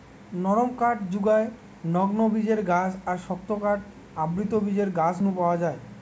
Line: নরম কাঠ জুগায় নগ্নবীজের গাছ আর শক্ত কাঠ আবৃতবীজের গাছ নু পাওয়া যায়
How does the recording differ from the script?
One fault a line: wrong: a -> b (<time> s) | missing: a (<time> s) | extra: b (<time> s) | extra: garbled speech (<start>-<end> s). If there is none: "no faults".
no faults